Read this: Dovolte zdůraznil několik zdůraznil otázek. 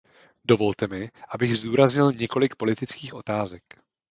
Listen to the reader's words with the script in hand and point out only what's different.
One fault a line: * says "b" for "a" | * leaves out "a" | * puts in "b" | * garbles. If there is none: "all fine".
* puts in "mi abych"
* says "politických" for "zdůraznil"